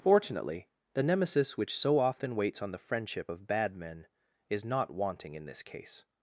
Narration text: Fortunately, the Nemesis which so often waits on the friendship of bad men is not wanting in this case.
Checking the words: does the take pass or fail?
pass